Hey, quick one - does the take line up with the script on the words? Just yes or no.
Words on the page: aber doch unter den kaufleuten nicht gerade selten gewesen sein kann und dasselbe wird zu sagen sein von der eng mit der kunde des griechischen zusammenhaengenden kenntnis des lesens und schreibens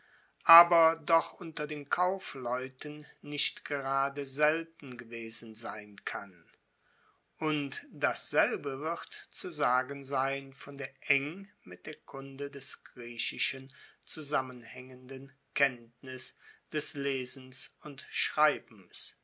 yes